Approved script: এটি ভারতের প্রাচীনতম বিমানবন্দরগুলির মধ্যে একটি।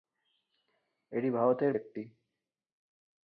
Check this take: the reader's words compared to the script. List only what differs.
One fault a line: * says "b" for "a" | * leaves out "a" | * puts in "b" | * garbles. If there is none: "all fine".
* leaves out "প্রাচীনতম বিমানবন্দরগুলির মধ্যে"